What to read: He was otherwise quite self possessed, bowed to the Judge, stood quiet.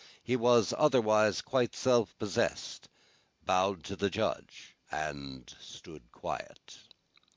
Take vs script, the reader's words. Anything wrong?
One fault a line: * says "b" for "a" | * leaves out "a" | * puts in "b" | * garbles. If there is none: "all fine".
* puts in "and"